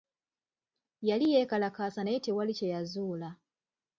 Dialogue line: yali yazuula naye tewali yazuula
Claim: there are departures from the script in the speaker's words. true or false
true